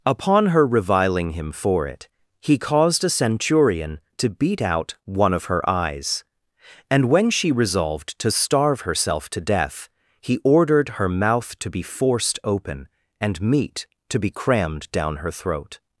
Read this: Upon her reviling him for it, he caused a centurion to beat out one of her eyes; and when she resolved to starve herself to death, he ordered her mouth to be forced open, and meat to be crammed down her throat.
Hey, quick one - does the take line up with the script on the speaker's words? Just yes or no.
yes